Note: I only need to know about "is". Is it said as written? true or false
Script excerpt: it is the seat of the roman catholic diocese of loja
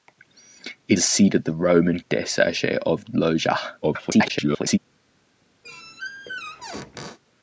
false